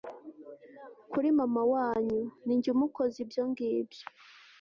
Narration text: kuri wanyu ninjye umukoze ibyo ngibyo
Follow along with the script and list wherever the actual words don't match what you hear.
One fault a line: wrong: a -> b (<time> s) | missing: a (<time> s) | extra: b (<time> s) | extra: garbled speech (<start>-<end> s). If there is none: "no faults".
extra: mama (1.4 s)